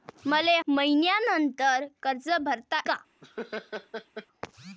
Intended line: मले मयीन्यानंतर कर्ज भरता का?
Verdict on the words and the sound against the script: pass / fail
fail